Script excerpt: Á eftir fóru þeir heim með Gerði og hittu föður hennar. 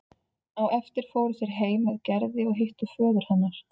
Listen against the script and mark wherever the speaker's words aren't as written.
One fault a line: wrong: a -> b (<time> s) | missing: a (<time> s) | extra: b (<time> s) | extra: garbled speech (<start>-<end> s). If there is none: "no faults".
no faults